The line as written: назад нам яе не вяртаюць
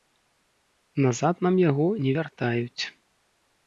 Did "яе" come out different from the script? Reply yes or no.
yes